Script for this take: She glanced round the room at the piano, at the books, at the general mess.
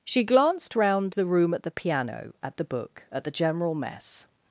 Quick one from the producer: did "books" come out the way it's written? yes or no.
no